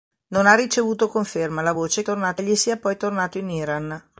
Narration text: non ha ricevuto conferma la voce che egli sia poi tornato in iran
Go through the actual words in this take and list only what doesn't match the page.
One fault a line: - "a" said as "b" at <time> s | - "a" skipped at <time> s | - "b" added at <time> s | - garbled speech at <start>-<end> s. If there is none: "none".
- "che" said as "tornato" at 2.0 s